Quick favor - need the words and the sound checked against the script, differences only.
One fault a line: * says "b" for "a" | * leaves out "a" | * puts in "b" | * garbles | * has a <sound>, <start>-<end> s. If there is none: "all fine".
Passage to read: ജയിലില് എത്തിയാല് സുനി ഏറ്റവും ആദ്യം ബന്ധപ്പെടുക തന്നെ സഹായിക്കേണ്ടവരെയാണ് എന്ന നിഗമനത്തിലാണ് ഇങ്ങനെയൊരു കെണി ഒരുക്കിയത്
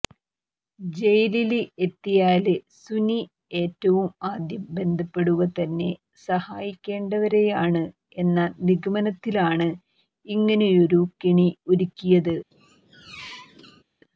* has a squeak, 12.5-13.8 s